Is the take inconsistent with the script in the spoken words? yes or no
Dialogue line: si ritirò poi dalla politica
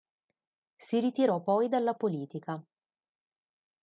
no